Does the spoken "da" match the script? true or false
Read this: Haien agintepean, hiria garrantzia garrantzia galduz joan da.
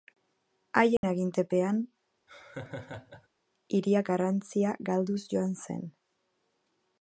false